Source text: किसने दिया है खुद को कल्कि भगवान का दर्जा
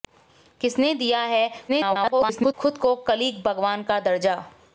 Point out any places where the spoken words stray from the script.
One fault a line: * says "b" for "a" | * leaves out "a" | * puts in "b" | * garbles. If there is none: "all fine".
* garbles